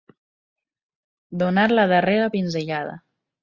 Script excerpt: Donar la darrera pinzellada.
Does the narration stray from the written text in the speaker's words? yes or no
no